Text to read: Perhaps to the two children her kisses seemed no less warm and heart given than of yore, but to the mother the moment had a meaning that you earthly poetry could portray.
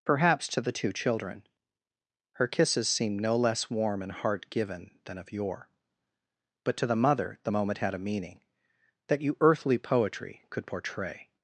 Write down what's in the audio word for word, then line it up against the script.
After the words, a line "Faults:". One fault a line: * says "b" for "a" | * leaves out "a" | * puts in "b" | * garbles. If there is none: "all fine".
Perhaps to the two children her kisses seemed no less warm and heart given than of yore, but to the mother the moment had a meaning that you earthly poetry could portray.
Faults:
all fine